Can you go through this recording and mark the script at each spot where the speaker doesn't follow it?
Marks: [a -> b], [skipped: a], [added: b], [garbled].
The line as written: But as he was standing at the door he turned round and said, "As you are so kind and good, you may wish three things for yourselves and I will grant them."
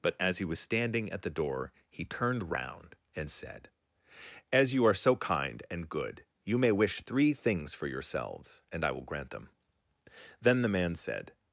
But as he was standing at the door he turned round and said, "As you are so kind and good, you may wish three things for yourselves and I will grant them." [added: Then the man said]